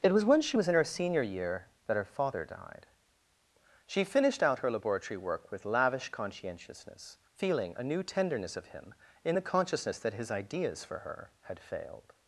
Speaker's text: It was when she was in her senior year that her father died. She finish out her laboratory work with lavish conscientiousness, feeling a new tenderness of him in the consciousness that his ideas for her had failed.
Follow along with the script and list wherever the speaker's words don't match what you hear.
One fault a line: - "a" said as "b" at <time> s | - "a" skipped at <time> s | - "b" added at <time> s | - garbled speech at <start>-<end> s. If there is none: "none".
- "finish" said as "finished" at 4.0 s